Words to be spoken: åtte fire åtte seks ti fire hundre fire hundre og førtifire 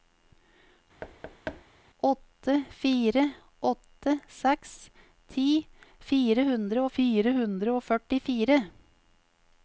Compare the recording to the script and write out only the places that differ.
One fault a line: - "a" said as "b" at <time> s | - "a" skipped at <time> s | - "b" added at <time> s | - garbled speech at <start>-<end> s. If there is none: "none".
none